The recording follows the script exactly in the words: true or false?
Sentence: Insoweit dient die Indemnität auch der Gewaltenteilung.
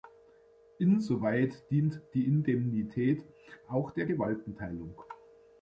true